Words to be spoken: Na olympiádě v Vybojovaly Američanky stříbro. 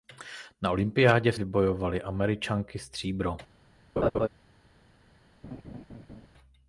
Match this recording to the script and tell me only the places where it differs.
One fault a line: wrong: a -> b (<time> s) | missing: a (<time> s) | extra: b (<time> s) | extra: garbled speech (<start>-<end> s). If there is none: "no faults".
no faults